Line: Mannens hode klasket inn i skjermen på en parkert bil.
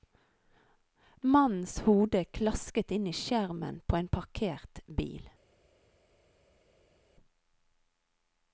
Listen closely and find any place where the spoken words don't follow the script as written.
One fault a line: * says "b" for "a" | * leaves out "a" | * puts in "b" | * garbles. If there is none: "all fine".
all fine